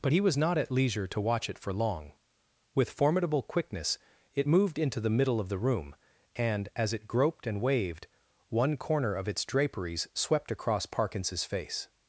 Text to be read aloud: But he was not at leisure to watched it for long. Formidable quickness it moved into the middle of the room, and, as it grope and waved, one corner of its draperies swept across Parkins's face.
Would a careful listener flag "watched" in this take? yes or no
yes